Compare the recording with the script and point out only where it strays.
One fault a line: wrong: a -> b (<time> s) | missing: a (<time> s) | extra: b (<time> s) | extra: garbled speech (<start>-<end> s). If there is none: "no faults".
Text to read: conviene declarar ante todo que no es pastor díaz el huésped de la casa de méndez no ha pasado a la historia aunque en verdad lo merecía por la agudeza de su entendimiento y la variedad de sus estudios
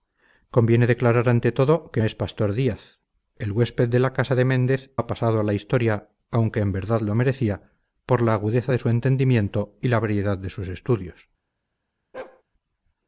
missing: no (2.0 s)
missing: no (4.9 s)